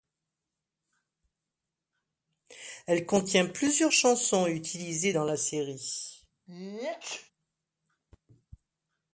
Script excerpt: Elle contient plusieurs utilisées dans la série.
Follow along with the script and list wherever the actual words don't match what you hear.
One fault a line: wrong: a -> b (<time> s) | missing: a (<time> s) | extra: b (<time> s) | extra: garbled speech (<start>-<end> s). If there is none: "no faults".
extra: chansons (3.9 s)